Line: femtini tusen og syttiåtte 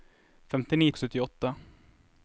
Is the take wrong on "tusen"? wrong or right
wrong